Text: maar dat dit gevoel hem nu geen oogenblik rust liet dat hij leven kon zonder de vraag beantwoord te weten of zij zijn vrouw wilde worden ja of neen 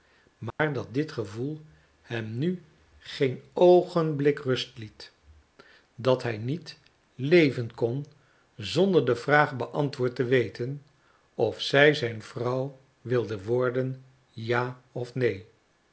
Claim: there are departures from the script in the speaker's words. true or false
true